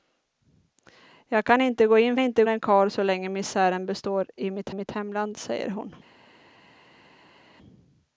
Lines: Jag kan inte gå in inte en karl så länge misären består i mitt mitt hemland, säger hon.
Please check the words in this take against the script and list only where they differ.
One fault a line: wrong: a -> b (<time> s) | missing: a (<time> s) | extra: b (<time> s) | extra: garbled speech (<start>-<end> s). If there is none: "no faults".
no faults